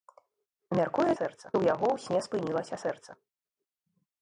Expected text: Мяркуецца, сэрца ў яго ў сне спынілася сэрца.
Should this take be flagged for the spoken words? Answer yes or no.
no